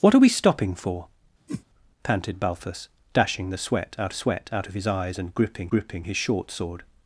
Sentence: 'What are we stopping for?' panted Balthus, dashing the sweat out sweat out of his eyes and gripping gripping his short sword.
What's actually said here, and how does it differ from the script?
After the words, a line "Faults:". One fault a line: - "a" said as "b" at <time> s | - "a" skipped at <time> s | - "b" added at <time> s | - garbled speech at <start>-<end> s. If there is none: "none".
'What are we stopping for?' panted Balthus, dashing the sweat out sweat out of his eyes and gripping gripping his short sword.
Faults:
none